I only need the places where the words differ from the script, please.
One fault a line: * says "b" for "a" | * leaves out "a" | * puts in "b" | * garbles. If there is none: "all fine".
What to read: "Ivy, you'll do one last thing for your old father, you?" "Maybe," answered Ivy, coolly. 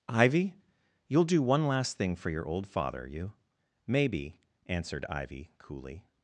all fine